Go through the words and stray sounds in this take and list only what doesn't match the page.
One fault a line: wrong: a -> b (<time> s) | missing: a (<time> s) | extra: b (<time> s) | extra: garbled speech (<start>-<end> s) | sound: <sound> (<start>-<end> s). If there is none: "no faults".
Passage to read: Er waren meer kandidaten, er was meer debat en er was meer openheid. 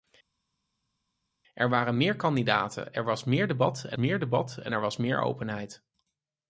extra: meer debat en (3.9 s)